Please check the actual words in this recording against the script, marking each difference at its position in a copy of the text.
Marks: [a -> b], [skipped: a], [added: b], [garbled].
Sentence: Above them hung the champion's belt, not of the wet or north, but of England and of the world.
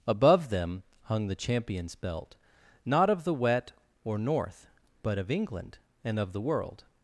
Above them hung the champion's belt, not of the wet or north, but of England and of the world.